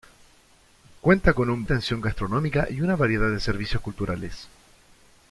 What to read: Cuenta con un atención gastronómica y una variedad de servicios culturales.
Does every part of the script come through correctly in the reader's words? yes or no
yes